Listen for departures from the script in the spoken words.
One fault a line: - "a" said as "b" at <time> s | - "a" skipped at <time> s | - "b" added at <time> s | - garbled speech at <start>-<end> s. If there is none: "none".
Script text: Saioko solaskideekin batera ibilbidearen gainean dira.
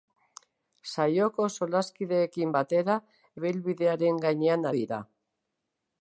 none